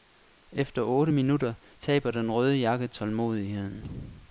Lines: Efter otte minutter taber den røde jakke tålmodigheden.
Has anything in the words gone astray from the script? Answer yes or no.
no